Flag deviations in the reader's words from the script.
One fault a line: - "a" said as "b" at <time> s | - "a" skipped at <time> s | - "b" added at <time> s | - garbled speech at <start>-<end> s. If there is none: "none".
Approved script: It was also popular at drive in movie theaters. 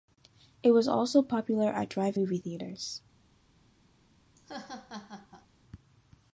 - "in" skipped at 2.2 s